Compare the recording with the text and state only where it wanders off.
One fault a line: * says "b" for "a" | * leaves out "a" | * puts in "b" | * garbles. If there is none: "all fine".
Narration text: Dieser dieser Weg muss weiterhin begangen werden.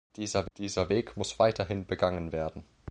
all fine